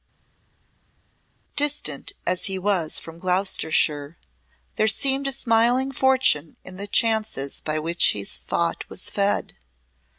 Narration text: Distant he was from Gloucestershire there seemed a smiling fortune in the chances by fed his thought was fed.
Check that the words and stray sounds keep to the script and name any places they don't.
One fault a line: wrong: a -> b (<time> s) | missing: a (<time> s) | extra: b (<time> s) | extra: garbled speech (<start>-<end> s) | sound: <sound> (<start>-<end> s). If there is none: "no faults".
extra: as (2.3 s)
wrong: fed -> which (7.8 s)